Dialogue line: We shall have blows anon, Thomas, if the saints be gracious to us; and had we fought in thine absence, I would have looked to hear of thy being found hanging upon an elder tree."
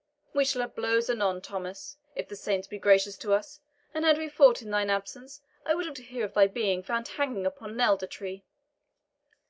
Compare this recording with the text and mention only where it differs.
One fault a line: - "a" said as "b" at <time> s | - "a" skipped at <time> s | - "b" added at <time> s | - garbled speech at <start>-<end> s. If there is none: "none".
- "looked" skipped at 6.0 s